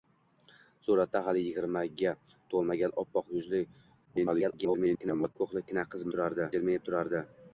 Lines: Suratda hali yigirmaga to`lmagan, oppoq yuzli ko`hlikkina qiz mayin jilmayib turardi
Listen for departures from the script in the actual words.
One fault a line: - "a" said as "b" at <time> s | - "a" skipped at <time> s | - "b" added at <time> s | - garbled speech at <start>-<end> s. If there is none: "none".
- garbled speech at 4.1-5.4 s
- "mayin" said as "turardi" at 6.1 s